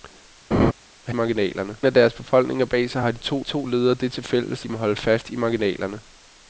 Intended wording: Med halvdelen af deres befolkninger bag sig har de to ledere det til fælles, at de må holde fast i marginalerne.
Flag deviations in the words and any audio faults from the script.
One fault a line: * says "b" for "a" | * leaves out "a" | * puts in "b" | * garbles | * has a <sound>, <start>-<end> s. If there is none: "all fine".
* has a laugh, 0.5-0.7 s
* says "marginalerne" for "halvdelen"
* puts in "to"
* leaves out "at"